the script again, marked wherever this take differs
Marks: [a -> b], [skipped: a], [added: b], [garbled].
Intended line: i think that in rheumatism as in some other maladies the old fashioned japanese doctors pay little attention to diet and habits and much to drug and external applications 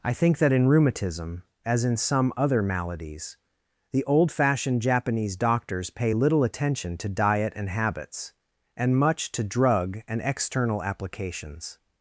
i think that in rheumatism as in some other maladies the old fashioned japanese doctors pay little attention to diet and habits and much to drug and external applications